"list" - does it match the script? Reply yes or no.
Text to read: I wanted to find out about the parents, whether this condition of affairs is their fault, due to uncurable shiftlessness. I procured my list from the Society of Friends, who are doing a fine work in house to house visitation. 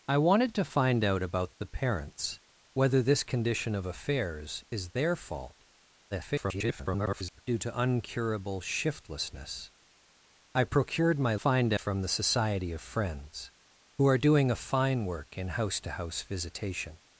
no